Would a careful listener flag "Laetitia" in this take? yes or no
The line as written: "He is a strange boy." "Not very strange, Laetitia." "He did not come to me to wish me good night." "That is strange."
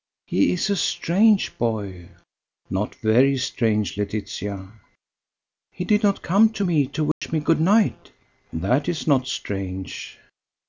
no